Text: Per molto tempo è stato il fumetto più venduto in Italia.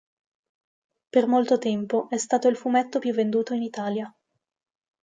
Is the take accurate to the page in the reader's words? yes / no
yes